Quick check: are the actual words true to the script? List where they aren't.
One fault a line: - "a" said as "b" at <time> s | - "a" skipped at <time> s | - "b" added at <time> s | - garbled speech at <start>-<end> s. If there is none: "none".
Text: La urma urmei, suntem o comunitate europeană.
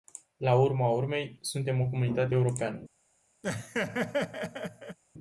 none